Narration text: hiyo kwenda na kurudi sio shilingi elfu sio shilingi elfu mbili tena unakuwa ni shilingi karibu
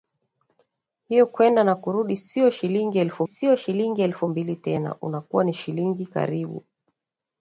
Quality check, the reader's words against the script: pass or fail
pass